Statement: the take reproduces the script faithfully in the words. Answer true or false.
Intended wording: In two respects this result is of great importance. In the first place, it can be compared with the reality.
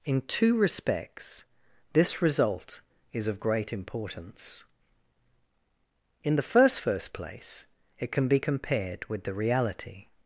false